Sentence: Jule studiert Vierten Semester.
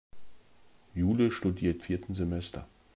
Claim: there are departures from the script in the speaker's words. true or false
false